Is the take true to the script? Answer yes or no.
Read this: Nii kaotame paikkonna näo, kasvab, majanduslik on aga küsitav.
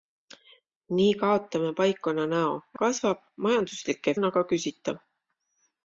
yes